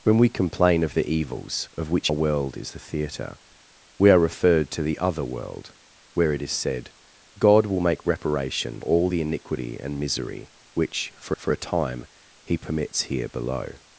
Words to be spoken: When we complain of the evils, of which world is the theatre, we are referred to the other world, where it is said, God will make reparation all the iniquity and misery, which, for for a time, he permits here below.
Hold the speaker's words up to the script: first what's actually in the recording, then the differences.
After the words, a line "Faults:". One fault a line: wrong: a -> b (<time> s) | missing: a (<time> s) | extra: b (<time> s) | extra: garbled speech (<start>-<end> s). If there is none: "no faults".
When we complain of the evils, of which world is the theatre, we are referred to the other world, where it is said, God will make reparation all the iniquity and misery, which, for for a time, he permits here below.
Faults:
no faults